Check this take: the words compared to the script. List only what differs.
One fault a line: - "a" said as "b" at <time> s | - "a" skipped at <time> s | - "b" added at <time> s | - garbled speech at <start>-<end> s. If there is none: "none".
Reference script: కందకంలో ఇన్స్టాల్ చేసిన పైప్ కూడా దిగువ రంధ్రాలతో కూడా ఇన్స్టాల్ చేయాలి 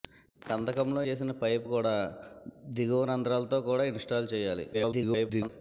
- "ఇన్స్టాల్" skipped at 1.0 s
- garbled speech at 4.7-5.5 s